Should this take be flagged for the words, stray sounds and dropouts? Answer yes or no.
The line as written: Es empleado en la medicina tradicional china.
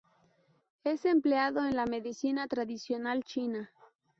no